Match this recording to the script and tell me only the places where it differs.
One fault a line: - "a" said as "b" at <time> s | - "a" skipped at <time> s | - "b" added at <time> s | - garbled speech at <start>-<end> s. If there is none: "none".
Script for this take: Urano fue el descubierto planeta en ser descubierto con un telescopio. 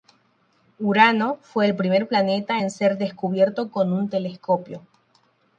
- "descubierto" said as "primer" at 1.8 s